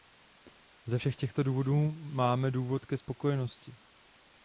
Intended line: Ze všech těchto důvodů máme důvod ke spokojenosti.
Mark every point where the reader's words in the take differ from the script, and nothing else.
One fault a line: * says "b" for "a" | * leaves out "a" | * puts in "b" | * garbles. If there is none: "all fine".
all fine